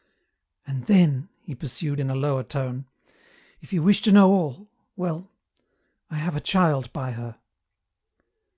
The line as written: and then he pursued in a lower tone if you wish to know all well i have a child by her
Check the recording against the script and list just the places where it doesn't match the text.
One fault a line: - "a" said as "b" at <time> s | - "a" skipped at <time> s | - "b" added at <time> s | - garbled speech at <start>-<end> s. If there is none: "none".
none